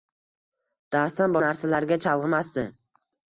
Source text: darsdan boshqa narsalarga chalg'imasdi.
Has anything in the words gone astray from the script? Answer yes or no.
yes